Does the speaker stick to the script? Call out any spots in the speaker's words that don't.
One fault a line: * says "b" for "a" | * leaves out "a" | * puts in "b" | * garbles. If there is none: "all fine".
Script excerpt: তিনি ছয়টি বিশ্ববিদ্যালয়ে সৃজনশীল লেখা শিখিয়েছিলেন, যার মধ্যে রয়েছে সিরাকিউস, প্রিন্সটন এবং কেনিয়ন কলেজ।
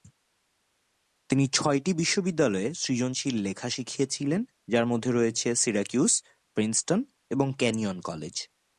all fine